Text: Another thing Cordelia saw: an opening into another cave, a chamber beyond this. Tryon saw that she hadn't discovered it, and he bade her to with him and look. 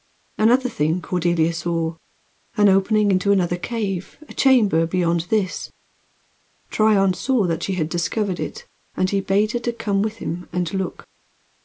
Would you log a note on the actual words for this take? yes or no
yes